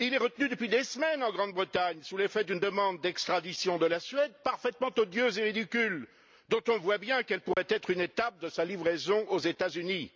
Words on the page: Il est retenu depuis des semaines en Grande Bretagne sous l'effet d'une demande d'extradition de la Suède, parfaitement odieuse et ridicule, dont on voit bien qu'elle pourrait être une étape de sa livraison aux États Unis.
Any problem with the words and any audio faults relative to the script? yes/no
yes